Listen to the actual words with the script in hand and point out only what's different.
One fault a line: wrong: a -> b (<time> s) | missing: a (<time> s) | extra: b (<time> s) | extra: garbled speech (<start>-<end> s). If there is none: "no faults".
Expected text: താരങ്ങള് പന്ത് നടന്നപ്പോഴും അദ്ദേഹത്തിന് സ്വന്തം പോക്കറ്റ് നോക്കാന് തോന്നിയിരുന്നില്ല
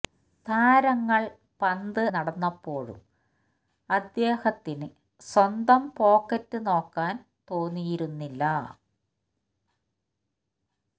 no faults